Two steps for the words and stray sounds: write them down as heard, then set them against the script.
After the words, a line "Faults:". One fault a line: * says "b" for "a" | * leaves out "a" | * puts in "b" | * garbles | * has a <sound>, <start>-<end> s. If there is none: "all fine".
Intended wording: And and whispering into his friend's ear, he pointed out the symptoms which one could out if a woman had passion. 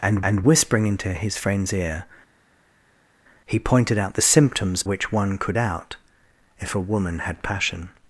And and whispering into his friend's ear, he pointed out the symptoms which one could out if a woman had passion.
Faults:
all fine